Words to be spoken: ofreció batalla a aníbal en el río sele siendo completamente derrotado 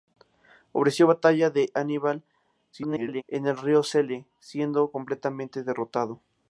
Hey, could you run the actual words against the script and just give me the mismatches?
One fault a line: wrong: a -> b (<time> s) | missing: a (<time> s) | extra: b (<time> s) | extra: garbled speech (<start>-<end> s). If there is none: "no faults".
extra: garbled speech (2.7-3.2 s)